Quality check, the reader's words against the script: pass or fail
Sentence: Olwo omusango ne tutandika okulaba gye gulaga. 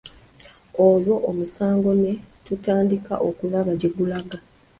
pass